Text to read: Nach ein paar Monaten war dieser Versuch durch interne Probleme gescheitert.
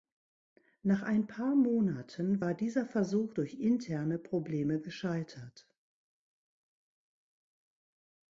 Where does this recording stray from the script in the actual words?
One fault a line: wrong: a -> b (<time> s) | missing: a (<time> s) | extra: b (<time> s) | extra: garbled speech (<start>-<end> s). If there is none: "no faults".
no faults